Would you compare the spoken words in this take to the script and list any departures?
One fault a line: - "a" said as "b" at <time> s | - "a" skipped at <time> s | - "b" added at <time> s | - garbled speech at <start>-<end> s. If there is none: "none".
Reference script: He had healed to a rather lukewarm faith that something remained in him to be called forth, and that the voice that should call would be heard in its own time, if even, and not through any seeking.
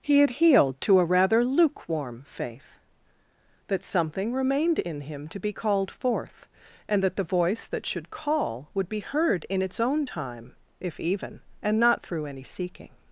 none